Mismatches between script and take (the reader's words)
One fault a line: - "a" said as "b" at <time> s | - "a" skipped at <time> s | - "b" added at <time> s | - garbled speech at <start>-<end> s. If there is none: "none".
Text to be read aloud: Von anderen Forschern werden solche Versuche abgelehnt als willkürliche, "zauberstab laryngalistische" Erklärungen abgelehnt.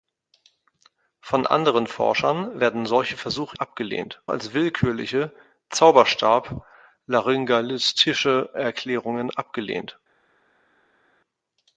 none